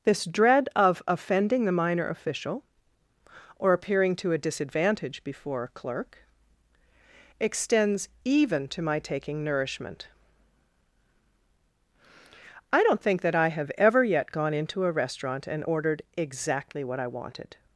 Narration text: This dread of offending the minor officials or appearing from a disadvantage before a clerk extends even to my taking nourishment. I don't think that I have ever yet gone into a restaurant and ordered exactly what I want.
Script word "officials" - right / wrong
wrong